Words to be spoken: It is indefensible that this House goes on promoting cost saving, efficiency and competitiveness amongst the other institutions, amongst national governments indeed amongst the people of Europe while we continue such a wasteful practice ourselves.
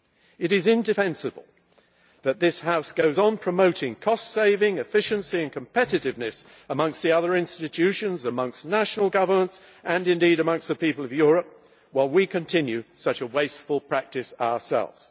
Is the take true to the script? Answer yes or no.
no